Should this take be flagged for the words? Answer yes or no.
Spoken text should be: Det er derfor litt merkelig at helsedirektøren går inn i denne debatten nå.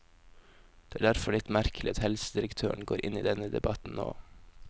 no